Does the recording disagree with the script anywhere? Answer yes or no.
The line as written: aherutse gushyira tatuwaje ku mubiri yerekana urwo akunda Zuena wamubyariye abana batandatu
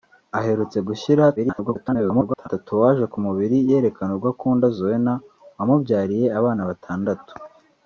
yes